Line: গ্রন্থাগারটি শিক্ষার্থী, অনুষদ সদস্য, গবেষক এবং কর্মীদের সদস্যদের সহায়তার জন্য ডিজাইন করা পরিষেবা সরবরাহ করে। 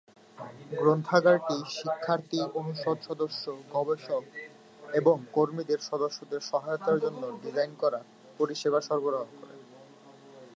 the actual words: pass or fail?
pass